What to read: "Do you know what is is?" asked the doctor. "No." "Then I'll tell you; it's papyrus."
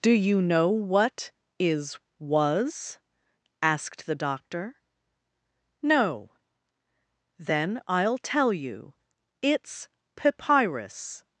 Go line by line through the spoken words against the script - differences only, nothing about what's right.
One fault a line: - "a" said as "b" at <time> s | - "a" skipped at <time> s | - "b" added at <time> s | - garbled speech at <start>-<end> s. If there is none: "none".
- "is" said as "was" at 2.2 s